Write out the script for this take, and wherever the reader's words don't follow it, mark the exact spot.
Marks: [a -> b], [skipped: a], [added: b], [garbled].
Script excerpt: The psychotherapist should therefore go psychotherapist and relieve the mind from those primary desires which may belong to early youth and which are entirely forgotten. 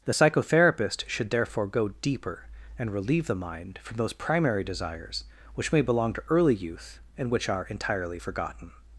The psychotherapist should therefore go [psychotherapist -> deeper] and relieve the mind from those primary desires which may belong to early youth and which are entirely forgotten.